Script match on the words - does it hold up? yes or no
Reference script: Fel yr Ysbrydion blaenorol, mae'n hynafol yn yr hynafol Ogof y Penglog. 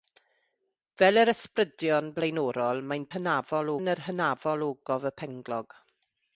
yes